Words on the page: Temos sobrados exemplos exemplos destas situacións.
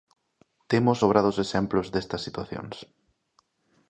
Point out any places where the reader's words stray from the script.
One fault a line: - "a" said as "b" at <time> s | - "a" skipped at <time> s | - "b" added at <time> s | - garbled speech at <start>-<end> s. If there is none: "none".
- "exemplos" skipped at 1.9 s